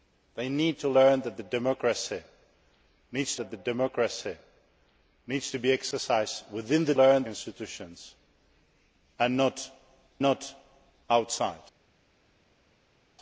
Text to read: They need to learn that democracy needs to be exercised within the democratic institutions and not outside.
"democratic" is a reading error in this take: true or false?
true